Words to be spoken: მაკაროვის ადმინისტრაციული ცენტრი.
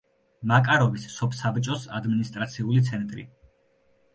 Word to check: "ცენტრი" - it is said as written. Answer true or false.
true